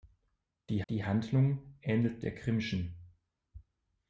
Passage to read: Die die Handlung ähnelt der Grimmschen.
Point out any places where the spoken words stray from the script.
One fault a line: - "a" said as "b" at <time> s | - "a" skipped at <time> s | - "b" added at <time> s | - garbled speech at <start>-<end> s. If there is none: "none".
none